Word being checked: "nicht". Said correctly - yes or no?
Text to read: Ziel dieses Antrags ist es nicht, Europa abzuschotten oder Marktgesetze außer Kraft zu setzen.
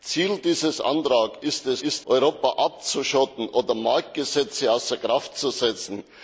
no